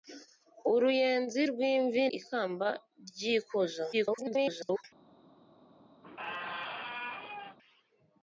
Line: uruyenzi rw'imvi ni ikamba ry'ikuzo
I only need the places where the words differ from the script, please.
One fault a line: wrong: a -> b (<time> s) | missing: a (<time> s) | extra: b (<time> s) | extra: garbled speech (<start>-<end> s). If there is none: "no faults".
missing: ni (2.0 s)
extra: garbled speech (3.9-4.8 s)